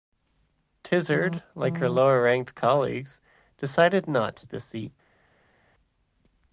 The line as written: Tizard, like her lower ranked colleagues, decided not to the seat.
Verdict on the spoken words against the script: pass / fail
pass